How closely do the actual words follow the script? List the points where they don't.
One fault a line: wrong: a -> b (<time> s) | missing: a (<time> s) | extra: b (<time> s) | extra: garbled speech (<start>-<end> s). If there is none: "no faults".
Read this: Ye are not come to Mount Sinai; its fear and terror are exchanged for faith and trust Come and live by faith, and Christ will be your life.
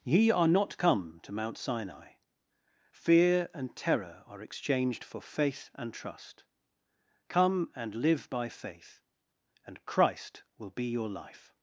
missing: its (2.1 s)